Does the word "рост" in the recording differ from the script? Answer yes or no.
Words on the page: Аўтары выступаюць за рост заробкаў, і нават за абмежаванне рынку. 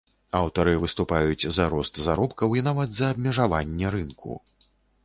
no